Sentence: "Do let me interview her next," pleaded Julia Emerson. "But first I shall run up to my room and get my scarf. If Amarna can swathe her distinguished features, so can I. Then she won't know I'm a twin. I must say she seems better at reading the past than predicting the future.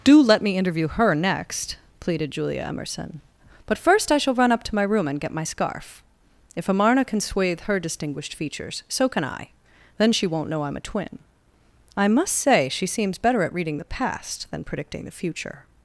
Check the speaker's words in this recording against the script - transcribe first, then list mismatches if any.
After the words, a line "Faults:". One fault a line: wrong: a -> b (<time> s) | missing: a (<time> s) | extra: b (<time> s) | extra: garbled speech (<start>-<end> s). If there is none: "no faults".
"Do let me interview her next," pleaded Julia Emerson. "But first I shall run up to my room and get my scarf. If Amarna can swathe her distinguished features, so can I. Then she won't know I'm a twin. I must say she seems better at reading the past than predicting the future.
Faults:
no faults